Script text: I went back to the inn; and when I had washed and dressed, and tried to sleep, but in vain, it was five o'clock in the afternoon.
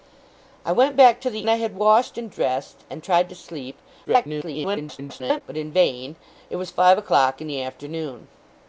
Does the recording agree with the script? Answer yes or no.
no